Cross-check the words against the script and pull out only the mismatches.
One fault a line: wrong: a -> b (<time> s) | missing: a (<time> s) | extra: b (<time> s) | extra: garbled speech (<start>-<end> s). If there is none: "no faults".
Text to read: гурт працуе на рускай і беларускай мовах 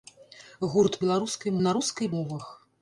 wrong: працуе -> беларускай (1.0 s)
missing: беларускай (2.1 s)